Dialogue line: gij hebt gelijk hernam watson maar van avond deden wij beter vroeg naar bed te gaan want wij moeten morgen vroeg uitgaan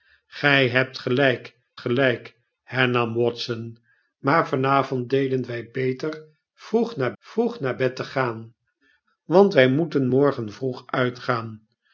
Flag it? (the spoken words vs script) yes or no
yes